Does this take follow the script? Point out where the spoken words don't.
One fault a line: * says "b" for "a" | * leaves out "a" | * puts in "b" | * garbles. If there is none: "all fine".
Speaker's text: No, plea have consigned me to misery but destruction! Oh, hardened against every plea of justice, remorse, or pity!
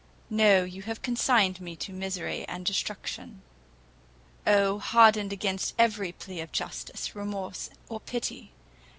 * says "you" for "plea"
* says "and" for "but"